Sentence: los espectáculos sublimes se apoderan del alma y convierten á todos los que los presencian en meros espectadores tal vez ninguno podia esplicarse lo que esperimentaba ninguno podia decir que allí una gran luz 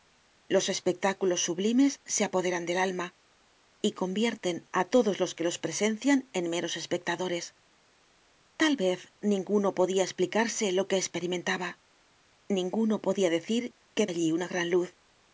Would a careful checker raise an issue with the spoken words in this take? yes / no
no